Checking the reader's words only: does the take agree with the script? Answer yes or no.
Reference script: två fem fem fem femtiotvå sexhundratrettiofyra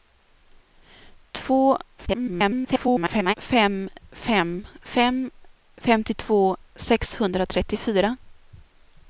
no